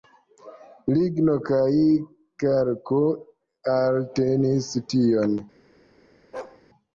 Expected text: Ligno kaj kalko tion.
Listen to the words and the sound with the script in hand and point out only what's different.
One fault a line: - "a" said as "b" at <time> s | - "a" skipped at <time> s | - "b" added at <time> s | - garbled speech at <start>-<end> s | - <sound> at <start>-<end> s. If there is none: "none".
- "eltenis" added at 3.8 s
- bark at 6.3-6.6 s